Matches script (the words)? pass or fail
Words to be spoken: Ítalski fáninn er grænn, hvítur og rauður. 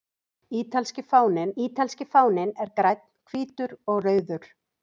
fail